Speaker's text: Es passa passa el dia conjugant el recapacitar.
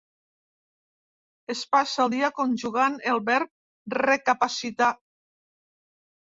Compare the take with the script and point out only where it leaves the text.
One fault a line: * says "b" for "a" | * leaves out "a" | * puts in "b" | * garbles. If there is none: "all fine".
* leaves out "passa"
* puts in "verb"